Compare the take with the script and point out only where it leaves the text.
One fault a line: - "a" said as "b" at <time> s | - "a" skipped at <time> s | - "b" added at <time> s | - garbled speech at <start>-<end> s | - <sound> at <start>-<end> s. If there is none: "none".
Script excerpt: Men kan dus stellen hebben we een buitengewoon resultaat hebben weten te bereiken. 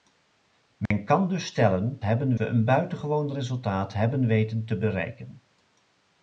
- dropout at 0.9-0.9 s